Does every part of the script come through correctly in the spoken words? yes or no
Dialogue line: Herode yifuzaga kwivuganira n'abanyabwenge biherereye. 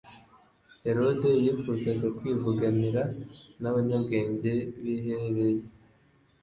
yes